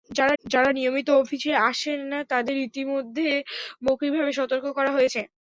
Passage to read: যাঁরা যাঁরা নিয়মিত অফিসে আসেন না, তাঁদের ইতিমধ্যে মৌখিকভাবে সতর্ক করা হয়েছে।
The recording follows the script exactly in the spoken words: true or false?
true